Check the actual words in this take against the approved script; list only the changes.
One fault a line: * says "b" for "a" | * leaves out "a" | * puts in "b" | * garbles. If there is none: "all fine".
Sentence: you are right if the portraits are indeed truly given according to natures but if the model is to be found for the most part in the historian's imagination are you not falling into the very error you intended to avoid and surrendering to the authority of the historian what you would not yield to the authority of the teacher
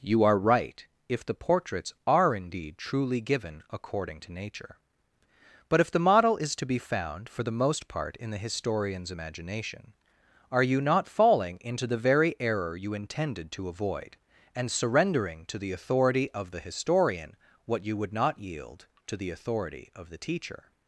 * says "nature" for "natures"